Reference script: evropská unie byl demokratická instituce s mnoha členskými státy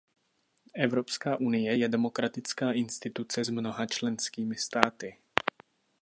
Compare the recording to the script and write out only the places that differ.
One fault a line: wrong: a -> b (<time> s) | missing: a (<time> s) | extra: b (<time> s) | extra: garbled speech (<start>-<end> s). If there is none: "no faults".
wrong: byl -> je (1.8 s)